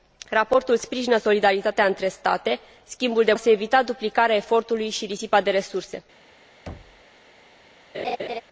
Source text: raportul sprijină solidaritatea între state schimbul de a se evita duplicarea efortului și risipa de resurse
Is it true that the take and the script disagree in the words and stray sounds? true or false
true